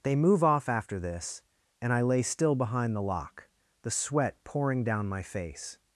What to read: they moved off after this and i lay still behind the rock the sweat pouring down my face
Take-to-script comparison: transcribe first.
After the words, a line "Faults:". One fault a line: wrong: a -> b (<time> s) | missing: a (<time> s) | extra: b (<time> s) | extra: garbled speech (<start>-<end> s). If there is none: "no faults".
they move off after this and i lay still behind the lock the sweat pouring down my face
Faults:
wrong: moved -> move (0.1 s)
wrong: rock -> lock (3.0 s)